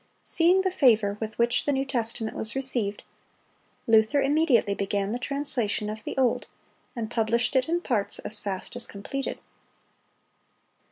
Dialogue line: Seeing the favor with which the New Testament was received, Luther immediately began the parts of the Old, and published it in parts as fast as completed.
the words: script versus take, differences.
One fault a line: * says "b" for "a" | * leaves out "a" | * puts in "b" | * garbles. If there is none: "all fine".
* says "translation" for "parts"